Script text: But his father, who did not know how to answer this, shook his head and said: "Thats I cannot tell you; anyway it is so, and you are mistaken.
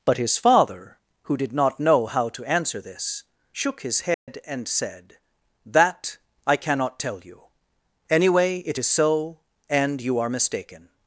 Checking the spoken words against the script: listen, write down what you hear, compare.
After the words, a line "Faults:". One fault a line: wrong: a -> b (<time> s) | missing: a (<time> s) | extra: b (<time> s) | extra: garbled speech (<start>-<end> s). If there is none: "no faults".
But his father, who did not know how to answer this, shook his head and said: "That I cannot tell you; anyway it is so, and you are mistaken.
Faults:
wrong: Thats -> That (5.7 s)